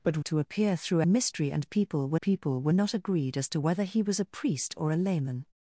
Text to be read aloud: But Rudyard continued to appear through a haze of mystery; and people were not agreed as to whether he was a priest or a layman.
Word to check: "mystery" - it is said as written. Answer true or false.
false